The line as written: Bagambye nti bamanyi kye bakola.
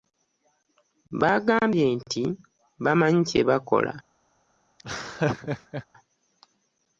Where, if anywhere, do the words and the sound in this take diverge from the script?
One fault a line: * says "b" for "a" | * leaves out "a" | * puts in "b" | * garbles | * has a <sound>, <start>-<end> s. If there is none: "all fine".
* has a laugh, 4.8-5.9 s